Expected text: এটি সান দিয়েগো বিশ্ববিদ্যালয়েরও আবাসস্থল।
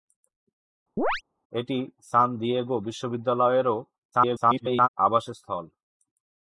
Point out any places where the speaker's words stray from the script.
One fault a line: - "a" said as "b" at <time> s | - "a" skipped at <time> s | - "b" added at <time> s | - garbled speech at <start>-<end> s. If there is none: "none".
- garbled speech at 4.1-4.9 s